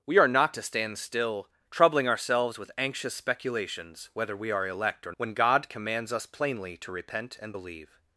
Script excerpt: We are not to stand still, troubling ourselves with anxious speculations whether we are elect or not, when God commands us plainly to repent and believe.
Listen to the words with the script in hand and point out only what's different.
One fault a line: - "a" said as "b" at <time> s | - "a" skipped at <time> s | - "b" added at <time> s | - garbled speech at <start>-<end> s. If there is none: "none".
- "not" skipped at 5.1 s